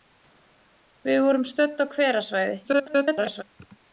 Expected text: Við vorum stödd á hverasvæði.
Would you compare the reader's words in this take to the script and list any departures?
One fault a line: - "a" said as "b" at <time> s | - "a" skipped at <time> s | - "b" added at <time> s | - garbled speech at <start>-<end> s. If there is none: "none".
- garbled speech at 2.6-3.4 s